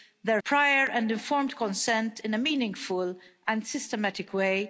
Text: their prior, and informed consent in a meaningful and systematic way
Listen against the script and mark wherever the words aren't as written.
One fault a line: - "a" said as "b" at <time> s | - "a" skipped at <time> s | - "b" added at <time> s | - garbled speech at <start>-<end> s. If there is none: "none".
none